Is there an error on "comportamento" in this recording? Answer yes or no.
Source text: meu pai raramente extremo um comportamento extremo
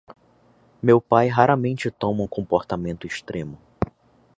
no